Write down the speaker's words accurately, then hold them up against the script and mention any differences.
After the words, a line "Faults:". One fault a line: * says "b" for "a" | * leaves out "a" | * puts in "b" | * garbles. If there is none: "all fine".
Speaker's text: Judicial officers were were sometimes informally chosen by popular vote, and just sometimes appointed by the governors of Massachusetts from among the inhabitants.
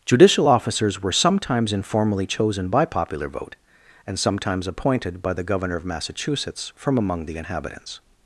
Judicial officers were sometimes informally chosen by popular vote, and sometimes appointed by the governor of Massachusetts from among the inhabitants.
Faults:
* leaves out "were"
* leaves out "just"
* says "governor" for "governors"